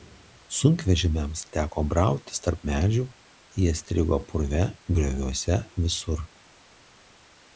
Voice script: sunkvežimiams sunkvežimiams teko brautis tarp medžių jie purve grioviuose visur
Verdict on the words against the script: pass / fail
fail